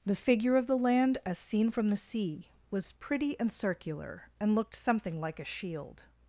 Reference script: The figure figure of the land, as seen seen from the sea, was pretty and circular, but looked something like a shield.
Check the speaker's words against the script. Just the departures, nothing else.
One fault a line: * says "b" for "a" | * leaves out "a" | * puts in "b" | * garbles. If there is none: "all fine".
* leaves out "figure"
* leaves out "seen"
* says "and" for "but"